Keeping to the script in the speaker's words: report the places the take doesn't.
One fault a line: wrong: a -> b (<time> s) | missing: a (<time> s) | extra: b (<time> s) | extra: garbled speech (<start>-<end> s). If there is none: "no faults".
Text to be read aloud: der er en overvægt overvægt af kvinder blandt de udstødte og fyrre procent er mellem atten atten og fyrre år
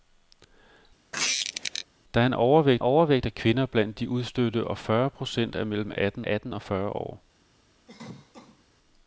no faults